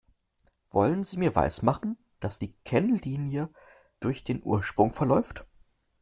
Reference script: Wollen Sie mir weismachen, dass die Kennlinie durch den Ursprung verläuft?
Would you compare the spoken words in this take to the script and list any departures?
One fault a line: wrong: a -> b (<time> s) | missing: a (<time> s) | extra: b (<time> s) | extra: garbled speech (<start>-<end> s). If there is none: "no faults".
no faults